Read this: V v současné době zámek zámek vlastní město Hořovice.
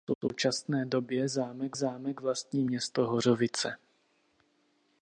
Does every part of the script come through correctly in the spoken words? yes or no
yes